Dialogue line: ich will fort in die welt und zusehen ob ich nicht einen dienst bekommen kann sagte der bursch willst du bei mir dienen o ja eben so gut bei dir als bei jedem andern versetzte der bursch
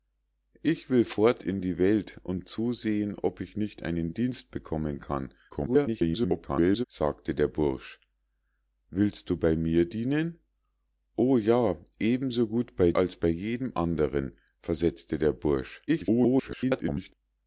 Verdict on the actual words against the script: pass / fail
fail